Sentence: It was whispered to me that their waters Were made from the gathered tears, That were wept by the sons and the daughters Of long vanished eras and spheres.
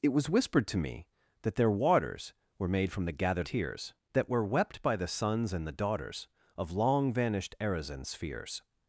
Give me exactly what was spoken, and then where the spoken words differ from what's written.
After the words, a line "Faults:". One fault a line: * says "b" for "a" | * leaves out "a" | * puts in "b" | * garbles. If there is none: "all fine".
It was whispered to me that their waters Were made from the gathered tears, That were wept by the sons and the daughters Of long vanished eras and spheres.
Faults:
all fine